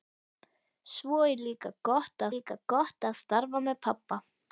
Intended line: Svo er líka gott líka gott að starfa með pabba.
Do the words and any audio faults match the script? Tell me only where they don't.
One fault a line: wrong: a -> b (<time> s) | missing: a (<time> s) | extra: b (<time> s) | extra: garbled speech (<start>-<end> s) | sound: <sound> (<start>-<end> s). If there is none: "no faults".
no faults